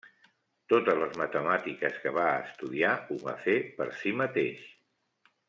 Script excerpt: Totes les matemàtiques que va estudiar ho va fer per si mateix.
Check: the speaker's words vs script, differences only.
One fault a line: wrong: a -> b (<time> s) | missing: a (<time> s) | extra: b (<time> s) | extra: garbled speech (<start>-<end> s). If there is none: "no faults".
no faults